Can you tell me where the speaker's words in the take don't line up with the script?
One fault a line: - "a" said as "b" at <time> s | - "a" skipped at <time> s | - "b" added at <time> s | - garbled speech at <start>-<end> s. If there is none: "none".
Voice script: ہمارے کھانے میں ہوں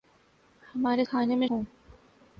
none